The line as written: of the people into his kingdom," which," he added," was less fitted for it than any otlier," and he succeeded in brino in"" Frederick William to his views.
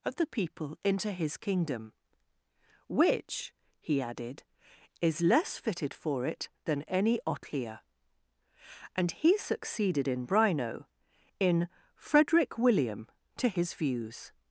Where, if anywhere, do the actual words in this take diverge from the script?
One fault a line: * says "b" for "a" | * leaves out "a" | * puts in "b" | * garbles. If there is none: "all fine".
* says "is" for "was"